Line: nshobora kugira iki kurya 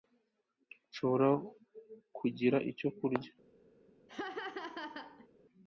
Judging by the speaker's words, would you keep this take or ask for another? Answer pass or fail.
fail